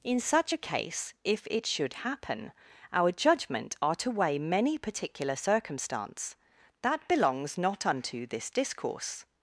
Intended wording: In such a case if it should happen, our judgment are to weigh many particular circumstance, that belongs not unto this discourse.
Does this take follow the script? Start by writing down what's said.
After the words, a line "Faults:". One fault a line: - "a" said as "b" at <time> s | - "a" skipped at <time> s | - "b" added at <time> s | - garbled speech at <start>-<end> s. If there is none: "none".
In such a case if it should happen, our judgment are to weigh many particular circumstance, that belongs not unto this discourse.
Faults:
none